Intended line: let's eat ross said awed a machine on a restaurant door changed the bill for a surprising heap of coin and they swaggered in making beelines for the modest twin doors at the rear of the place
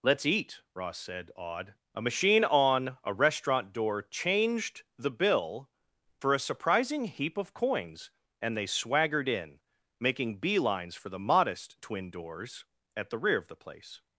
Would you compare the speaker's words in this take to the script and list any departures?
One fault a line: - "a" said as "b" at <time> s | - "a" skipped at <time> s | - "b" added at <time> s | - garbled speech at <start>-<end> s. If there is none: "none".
- "coin" said as "coins" at 7.5 s